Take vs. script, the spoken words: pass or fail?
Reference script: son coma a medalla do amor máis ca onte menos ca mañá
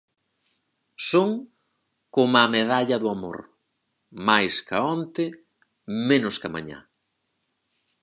pass